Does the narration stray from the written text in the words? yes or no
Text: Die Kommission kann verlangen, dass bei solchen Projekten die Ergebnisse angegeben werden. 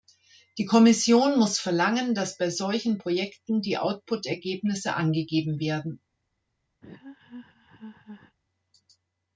yes